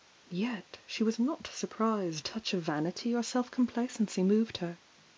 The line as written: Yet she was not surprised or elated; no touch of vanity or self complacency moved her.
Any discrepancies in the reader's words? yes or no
yes